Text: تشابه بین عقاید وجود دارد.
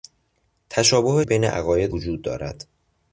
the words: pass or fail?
pass